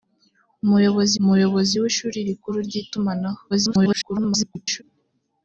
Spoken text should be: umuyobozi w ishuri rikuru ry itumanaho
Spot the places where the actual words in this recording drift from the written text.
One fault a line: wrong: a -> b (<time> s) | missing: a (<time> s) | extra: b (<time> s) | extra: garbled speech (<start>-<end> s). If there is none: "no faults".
extra: umuyobozi (1.2 s)
extra: garbled speech (3.5-4.8 s)